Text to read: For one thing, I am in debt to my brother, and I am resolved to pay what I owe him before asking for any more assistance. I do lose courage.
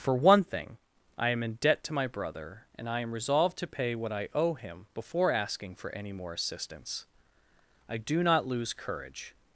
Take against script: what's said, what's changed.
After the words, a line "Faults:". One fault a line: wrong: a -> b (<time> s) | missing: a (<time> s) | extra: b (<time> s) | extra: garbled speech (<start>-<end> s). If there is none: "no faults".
For one thing, I am in debt to my brother, and I am resolved to pay what I owe him before asking for any more assistance. I do not lose courage.
Faults:
extra: not (8.2 s)